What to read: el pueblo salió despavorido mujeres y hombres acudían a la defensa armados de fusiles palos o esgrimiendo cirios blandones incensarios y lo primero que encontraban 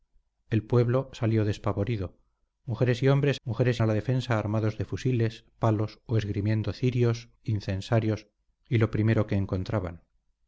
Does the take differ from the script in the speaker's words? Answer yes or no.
yes